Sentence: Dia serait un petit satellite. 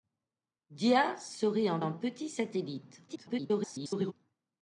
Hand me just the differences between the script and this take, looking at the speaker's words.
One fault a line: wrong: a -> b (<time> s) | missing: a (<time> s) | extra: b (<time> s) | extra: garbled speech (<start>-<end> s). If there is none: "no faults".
extra: un (1.8 s)
extra: garbled speech (3.1-4.1 s)